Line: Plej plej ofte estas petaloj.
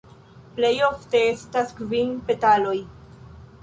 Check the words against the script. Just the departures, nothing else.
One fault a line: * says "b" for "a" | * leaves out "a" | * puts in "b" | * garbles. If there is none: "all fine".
* leaves out "plej"
* puts in "kvin"